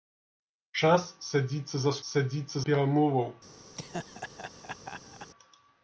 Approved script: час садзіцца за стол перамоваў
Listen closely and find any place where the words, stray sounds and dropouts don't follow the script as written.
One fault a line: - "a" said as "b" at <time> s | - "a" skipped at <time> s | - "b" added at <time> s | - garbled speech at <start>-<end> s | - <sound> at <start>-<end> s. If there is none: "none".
- "стол" said as "садзіцца" at 2.1 s
- laugh at 3.8-5.3 s